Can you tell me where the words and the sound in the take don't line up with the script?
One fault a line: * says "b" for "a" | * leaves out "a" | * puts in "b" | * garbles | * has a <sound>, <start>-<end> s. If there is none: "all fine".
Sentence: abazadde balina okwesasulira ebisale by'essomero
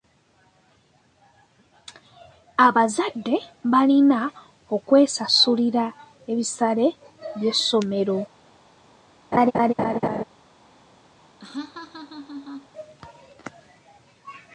* has a laugh, 9.3-10.2 s
* has a laugh, 11.4-12.7 s